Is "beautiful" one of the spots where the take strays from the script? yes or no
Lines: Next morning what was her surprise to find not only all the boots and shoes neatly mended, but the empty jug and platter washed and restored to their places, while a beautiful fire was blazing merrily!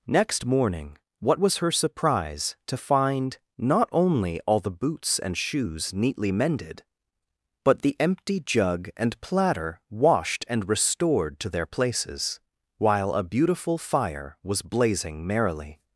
no